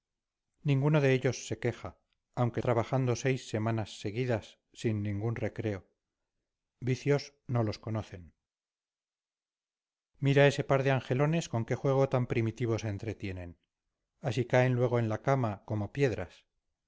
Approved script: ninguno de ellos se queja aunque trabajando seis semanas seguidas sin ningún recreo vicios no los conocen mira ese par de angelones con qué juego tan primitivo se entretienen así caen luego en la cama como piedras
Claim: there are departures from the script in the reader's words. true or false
false